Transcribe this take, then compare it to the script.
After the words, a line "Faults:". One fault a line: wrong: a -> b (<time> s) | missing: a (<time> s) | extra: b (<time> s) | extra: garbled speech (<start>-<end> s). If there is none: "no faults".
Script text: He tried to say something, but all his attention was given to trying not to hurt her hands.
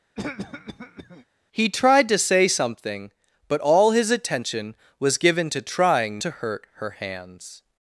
He tried to say something, but all his attention was given to trying to hurt her hands.
Faults:
missing: not (6.2 s)